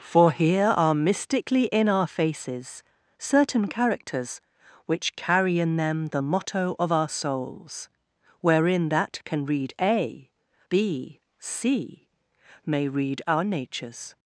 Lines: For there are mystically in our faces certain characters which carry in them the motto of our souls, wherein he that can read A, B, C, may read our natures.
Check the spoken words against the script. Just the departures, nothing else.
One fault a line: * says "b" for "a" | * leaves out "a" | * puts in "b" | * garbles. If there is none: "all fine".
* says "here" for "there"
* leaves out "he"